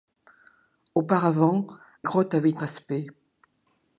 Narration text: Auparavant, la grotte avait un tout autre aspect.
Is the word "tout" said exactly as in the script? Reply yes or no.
no